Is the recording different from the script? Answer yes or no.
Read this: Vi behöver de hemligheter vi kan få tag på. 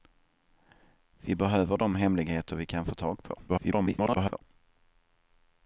yes